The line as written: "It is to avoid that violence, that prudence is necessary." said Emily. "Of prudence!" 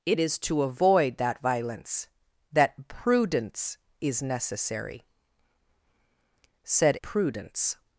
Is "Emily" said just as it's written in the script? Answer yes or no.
no